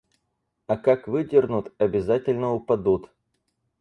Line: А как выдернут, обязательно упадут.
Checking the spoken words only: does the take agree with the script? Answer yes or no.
yes